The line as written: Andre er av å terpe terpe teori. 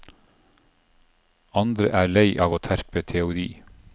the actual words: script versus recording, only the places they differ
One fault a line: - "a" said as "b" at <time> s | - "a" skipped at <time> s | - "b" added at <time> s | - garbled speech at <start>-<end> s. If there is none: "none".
- "lei" added at 2.1 s
- "terpe" skipped at 3.0 s